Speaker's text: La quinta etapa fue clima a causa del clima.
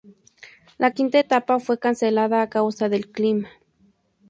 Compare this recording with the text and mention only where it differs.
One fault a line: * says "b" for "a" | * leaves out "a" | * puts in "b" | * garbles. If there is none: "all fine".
* says "cancelada" for "clima"